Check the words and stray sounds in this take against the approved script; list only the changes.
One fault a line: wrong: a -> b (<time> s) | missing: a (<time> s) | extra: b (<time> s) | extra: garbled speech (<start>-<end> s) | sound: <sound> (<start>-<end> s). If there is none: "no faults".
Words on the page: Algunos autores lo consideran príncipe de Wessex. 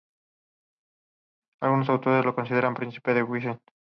no faults